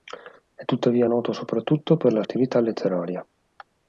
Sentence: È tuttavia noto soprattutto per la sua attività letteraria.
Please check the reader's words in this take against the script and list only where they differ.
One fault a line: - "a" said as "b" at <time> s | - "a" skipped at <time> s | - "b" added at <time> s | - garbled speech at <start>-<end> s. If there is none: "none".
- "sua" skipped at 2.2 s